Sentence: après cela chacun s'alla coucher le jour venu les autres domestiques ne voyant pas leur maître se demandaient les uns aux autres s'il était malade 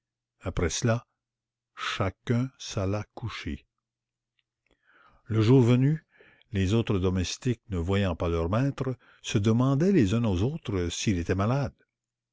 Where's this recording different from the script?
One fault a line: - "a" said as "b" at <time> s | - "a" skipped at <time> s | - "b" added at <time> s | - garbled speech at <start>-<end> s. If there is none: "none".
none